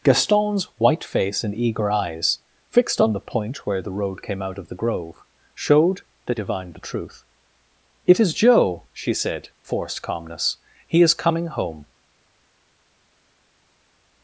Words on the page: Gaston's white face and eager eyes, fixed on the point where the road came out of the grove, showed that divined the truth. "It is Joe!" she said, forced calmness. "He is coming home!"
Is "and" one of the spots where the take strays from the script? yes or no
no